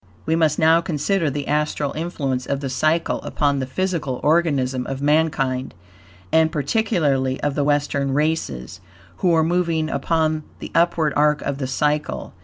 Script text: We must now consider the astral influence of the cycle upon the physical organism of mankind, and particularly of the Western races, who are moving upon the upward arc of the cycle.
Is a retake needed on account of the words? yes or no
no